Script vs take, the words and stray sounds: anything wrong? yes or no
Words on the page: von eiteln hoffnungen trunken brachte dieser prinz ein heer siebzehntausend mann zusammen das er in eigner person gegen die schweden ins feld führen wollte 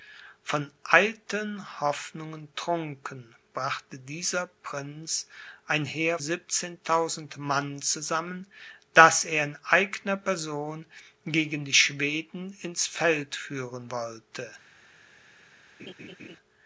yes